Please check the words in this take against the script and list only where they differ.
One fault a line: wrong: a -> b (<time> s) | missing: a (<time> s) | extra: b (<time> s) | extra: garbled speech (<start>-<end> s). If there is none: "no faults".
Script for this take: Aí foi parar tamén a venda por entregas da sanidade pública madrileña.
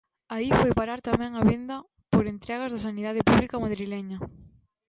no faults